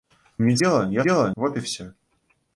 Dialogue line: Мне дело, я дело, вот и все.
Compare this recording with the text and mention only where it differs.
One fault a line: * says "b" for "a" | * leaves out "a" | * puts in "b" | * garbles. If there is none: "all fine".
all fine